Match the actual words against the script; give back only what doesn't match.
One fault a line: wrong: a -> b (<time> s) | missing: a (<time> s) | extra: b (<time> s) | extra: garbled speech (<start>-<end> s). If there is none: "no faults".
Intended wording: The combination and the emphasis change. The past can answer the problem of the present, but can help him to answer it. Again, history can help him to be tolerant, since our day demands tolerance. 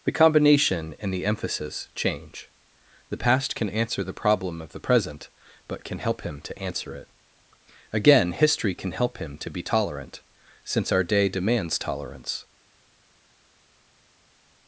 no faults